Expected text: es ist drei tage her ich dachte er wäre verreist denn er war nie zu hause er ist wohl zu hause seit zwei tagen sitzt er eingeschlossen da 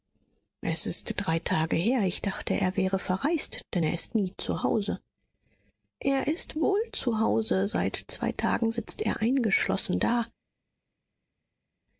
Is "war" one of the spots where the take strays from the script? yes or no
yes